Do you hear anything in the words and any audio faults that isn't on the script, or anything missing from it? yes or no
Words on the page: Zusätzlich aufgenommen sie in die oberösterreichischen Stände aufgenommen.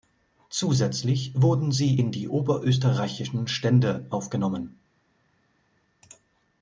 yes